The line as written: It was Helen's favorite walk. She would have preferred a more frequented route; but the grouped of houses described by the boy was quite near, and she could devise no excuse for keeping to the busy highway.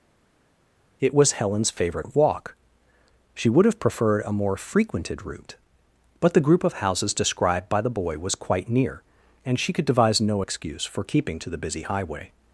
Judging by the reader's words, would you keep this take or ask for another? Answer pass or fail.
fail